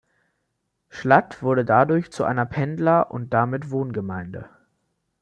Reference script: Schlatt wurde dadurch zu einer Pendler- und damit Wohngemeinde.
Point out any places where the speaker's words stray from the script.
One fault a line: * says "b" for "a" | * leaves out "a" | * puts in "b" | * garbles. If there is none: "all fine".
all fine